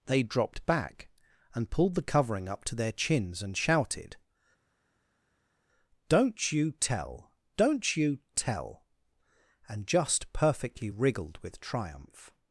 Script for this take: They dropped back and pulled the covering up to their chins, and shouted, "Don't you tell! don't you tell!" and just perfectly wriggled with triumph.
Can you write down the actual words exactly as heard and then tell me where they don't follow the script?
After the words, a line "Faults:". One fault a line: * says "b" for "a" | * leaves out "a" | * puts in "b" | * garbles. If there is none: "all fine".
They dropped back and pulled the covering up to their chins, and shouted, "Don't you tell! don't you tell!" and just perfectly wriggled with triumph.
Faults:
all fine